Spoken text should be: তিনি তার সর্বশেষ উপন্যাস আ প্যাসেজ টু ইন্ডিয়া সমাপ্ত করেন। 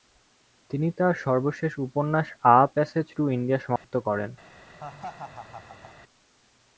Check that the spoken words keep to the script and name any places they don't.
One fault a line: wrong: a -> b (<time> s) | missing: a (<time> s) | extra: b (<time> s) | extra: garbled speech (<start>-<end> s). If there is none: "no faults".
no faults